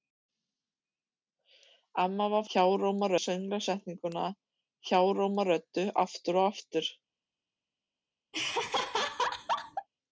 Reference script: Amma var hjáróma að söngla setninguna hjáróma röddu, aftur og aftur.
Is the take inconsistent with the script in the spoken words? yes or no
no